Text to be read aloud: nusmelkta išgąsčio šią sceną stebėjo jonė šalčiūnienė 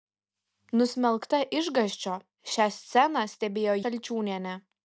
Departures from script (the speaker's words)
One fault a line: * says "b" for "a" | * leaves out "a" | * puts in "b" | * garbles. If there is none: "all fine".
* leaves out "jonė"